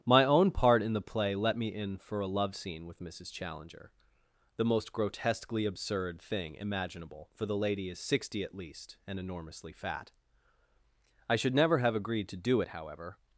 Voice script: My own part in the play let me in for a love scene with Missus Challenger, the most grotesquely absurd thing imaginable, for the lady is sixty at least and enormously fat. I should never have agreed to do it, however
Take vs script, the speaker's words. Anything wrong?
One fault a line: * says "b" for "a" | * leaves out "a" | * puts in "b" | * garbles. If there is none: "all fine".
all fine